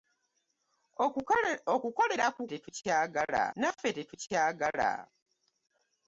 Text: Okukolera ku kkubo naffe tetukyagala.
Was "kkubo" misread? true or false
true